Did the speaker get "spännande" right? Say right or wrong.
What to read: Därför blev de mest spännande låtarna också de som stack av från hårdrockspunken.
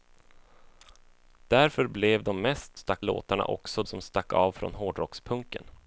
wrong